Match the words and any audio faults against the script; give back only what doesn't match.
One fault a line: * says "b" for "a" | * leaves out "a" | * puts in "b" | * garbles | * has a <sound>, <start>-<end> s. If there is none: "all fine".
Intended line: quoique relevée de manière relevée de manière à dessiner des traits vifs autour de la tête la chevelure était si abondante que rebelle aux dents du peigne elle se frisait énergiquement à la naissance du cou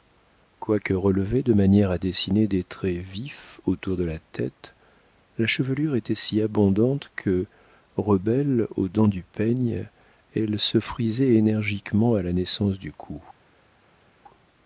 * leaves out "relevée de manière"